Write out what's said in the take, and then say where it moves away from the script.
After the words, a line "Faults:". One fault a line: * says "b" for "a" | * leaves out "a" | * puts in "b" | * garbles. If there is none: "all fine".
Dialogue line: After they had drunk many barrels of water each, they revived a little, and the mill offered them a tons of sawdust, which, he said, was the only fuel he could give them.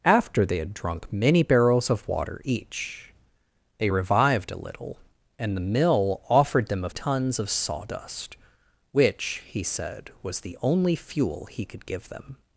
After they had drunk many barrels of water each, they revived a little, and the mill offered them a tons of sawdust, which, he said, was the only fuel he could give them.
Faults:
all fine